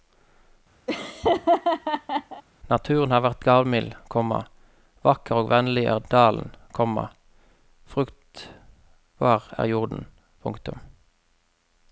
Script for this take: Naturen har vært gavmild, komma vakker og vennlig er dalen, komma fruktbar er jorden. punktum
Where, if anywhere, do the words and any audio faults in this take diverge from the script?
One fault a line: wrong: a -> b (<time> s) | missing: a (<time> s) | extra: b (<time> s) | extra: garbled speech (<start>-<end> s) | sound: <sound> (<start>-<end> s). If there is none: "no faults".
sound: laugh (0.9-2.4 s)